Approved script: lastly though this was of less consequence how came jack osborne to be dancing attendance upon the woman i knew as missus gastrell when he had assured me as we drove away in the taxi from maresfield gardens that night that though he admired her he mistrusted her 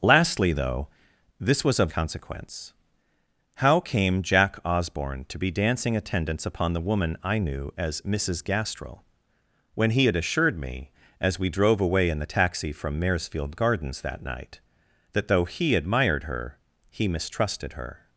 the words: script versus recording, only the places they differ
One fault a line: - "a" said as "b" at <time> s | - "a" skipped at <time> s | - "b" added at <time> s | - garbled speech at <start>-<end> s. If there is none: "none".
- "less" skipped at 1.9 s